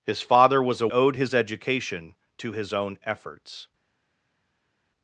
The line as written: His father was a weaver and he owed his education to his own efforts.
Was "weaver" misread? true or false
true